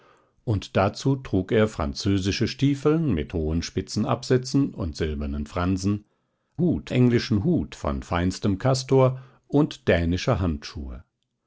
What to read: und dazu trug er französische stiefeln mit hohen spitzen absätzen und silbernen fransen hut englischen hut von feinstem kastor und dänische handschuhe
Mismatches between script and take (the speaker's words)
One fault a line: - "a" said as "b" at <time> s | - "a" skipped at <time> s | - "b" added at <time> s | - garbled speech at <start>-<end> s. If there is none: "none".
none